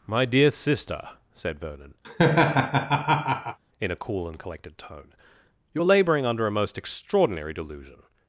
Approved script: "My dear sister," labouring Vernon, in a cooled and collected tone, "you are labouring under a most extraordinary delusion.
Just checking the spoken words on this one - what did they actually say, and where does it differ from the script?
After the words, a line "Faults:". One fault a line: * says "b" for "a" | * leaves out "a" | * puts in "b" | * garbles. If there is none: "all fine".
"My dear sister," said Vernon, in a cool and collected tone, "you are labouring under a most extraordinary delusion.
Faults:
* says "said" for "labouring"
* says "cool" for "cooled"